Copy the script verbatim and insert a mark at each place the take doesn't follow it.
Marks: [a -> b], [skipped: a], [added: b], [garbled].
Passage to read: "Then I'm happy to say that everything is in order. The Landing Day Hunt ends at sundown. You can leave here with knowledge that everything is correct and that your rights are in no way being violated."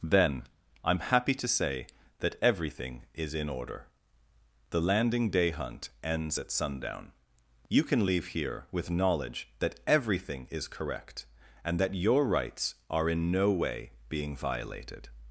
"Then I'm happy to say that everything is in order. The Landing Day Hunt ends at sundown. You can leave here with knowledge that everything is correct and that your rights are in no way being violated."